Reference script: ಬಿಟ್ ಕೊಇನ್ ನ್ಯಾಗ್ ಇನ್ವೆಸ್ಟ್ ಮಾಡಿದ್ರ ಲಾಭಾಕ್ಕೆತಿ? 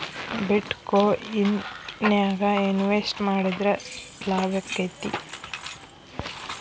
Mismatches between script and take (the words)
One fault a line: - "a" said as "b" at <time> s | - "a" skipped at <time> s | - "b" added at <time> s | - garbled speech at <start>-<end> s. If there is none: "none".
none